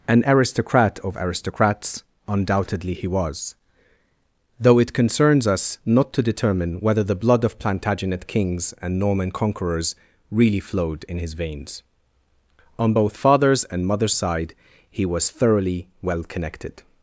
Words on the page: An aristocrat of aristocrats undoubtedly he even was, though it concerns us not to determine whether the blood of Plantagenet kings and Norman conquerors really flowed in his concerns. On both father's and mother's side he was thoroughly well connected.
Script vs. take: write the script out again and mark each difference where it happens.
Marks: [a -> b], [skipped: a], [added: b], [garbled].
An aristocrat of aristocrats undoubtedly he [skipped: even] was, though it concerns us not to determine whether the blood of Plantagenet kings and Norman conquerors really flowed in his [concerns. -> veins] On both father's and mother's side he was thoroughly well connected.